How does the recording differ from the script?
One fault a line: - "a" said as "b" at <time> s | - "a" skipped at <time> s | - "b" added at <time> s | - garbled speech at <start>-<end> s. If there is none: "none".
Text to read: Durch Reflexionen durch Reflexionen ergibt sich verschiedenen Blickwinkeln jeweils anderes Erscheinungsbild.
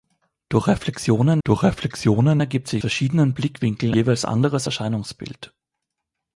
none